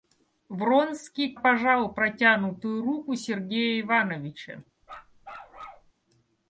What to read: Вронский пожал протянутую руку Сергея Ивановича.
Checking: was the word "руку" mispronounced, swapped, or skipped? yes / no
no